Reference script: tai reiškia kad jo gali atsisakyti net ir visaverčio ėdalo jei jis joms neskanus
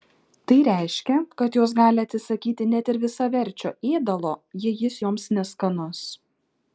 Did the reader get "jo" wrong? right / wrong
wrong